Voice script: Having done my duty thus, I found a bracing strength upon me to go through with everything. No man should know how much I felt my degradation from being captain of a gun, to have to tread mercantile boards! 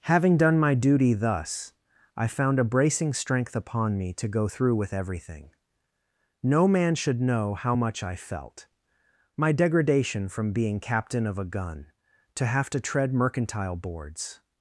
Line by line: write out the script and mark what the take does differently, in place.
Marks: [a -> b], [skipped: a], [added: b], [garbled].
Having done my duty thus, I found a bracing strength upon me to go through with everything. No man should know how much I felt my degradation from being captain of a gun, to have to tread mercantile boards!